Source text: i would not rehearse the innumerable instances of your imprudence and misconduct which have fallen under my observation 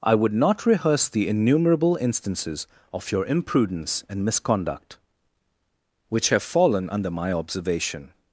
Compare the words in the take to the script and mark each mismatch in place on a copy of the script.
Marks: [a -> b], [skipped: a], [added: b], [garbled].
i would not rehearse the innumerable instances of your imprudence and misconduct which have fallen under my observation